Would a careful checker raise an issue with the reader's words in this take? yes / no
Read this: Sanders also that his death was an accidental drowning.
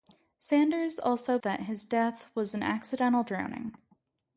no